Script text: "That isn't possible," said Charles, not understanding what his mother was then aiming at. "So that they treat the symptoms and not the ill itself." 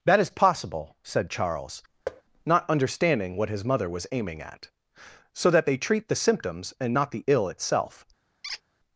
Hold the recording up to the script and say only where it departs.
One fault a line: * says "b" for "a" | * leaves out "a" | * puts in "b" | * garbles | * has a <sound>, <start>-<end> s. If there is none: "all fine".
* says "is" for "isn't"
* has a thud, 2.1-2.2 s
* leaves out "then"
* has a squeak, 8.4-8.6 s